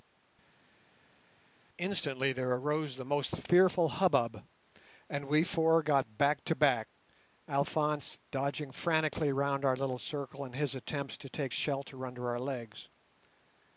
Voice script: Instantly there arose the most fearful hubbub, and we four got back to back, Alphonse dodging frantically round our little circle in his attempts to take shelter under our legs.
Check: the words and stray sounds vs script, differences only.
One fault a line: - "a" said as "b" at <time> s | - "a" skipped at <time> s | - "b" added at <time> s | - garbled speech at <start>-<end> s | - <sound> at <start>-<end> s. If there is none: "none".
none